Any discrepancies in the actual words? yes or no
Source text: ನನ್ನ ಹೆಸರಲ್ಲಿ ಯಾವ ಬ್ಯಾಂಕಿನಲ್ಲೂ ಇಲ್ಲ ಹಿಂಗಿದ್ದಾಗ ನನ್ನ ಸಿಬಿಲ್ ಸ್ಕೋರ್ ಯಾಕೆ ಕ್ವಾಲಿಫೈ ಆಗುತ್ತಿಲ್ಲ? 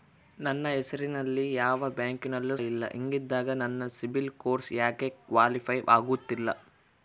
no